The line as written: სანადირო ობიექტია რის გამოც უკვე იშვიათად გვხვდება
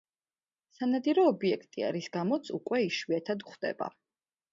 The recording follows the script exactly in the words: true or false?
true